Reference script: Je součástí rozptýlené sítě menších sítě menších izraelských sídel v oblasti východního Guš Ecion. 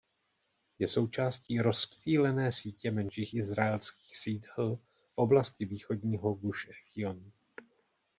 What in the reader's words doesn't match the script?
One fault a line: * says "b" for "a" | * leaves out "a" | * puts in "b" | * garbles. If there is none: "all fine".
* leaves out "sítě menších"